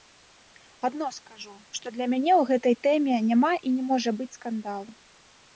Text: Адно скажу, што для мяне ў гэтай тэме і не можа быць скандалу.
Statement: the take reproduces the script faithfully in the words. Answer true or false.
false